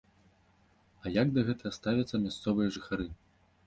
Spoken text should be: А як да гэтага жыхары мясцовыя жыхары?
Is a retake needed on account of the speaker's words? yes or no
yes